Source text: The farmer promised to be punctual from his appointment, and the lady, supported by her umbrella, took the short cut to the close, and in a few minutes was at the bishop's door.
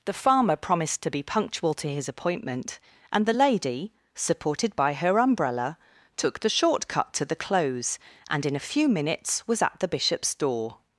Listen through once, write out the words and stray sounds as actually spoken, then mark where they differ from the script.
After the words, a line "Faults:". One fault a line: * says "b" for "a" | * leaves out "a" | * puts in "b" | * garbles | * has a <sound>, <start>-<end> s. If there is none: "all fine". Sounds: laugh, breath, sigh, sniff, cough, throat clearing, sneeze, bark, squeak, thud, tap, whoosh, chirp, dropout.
The farmer promised to be punctual to his appointment, and the lady, supported by her umbrella, took the short cut to the close, and in a few minutes was at the bishop's door.
Faults:
* says "to" for "from"